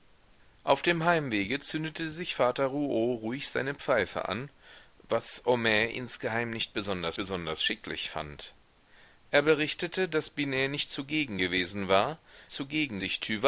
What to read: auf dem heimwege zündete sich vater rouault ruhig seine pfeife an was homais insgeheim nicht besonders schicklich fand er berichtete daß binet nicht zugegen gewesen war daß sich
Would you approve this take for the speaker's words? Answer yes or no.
no